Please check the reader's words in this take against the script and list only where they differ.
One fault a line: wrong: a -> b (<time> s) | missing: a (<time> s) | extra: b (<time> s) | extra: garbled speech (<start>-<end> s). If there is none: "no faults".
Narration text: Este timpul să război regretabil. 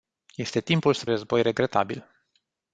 no faults